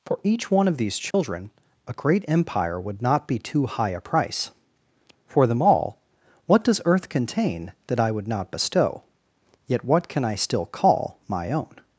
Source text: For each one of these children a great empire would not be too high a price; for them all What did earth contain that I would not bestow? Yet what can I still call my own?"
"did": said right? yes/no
no